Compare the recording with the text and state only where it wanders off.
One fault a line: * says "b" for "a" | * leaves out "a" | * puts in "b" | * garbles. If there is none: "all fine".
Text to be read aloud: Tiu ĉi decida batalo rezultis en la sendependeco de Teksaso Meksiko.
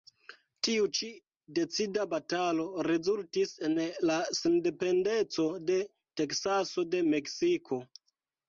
* puts in "de"